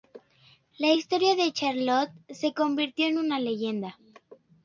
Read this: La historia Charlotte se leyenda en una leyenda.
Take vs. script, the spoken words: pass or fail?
fail